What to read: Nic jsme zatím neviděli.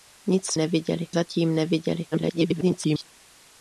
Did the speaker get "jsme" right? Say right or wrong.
wrong